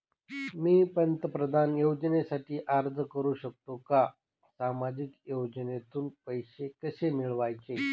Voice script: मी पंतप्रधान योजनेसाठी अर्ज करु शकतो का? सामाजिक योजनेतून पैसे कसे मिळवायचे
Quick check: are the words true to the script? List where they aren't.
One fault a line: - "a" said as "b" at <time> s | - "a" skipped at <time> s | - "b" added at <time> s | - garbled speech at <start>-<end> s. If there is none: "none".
none